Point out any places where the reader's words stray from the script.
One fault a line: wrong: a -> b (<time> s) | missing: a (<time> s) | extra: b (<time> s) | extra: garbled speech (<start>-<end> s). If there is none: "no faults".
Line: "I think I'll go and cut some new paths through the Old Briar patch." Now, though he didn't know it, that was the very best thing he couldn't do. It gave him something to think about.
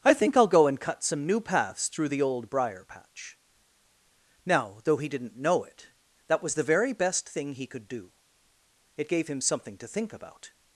wrong: couldn't -> could (7.7 s)